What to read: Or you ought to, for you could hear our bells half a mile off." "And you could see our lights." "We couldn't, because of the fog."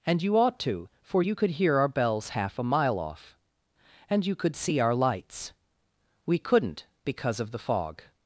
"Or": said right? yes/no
no